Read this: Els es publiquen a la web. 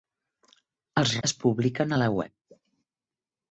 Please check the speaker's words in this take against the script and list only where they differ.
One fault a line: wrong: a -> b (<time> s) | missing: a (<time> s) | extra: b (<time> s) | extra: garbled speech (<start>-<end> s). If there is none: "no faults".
no faults